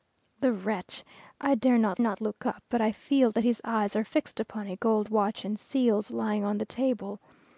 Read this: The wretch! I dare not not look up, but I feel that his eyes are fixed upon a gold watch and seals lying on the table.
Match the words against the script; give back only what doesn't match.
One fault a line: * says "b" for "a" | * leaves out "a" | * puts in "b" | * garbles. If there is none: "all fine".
all fine